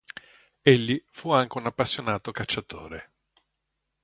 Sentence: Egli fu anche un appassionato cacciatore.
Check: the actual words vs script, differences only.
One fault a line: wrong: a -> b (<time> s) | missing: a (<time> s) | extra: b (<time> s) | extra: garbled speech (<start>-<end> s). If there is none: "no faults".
no faults